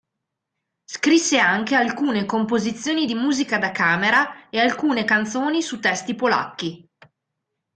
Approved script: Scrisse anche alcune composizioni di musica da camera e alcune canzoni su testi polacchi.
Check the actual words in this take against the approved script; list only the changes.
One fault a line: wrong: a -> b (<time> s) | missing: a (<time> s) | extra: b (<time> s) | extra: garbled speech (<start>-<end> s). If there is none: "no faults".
no faults